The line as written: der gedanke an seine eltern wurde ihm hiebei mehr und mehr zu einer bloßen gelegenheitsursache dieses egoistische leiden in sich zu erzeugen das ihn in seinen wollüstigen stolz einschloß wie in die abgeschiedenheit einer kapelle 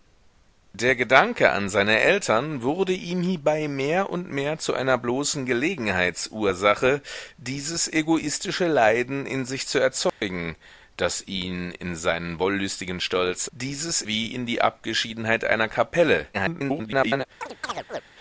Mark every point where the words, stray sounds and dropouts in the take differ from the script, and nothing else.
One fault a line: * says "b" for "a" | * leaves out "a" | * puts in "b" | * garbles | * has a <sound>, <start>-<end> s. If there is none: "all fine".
* has a dropout, 10.1-10.2 s
* says "dieses" for "einschloß"
* garbles
* has a chirp, 17.4-18.0 s